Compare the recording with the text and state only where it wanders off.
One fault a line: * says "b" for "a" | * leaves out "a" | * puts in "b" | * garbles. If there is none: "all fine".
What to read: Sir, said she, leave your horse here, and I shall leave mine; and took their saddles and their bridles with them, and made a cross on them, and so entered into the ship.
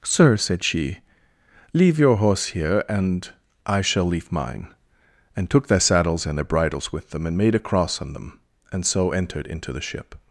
all fine